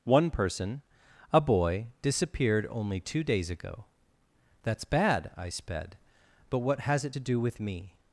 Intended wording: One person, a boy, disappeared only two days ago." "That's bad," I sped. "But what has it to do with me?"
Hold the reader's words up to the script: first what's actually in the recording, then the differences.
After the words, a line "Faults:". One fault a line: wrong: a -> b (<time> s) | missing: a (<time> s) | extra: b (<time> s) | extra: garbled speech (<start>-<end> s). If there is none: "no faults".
One person, a boy, disappeared only two days ago." "That's bad," I sped. "But what has it to do with me?"
Faults:
no faults